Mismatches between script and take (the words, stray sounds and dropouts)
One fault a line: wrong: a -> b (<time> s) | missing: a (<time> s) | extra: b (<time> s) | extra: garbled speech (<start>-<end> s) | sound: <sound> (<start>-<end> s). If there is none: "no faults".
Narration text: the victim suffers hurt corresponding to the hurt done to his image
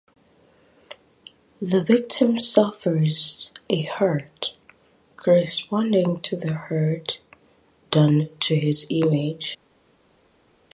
extra: a (3.7 s)